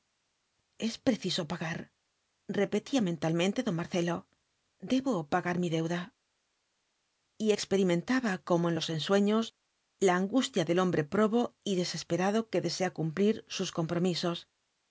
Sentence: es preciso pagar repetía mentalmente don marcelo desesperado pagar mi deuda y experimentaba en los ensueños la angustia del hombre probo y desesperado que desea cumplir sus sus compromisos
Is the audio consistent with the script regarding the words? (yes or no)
no